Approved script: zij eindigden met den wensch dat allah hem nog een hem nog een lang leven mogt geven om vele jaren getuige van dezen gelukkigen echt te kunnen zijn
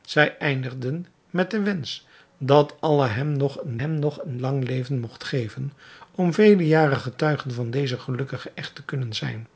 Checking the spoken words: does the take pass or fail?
pass